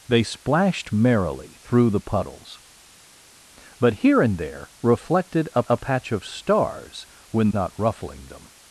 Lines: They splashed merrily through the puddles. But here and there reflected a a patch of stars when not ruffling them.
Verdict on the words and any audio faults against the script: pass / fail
pass